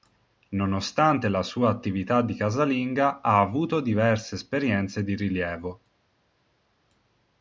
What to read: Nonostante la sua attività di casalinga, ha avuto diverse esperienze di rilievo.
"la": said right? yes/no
yes